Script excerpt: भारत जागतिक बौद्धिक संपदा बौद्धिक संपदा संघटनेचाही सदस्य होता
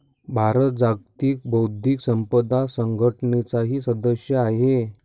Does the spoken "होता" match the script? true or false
false